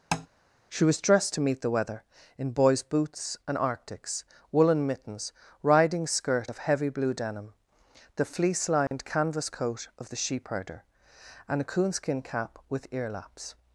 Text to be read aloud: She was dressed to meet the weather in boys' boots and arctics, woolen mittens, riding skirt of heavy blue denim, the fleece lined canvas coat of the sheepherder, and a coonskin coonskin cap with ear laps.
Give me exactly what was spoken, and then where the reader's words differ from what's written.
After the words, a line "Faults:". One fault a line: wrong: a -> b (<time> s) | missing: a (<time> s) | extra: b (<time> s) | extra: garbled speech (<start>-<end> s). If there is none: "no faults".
She was dressed to meet the weather in boys' boots and arctics, woolen mittens, riding skirt of heavy blue denim, the fleece lined canvas coat of the sheepherder, and a coonskin cap with ear laps.
Faults:
missing: coonskin (12.2 s)